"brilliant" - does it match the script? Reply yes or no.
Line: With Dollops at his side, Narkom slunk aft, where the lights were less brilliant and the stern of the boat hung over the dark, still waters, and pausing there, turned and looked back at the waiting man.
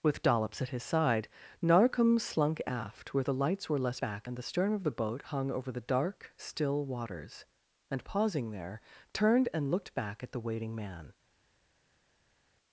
no